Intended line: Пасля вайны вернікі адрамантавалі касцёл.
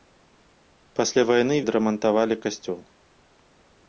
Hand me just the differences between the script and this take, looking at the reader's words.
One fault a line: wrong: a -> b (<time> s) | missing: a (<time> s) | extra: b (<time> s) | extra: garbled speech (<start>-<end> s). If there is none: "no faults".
missing: вернікі (1.6 s)